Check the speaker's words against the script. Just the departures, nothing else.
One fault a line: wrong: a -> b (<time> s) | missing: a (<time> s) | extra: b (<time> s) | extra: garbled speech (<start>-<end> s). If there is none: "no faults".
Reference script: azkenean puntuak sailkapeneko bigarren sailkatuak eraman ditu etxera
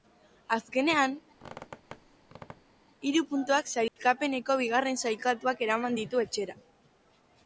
extra: hiru (3.1 s)